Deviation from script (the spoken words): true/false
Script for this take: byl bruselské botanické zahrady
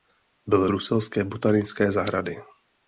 false